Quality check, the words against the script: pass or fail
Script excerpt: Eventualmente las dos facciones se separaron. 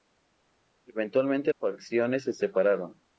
fail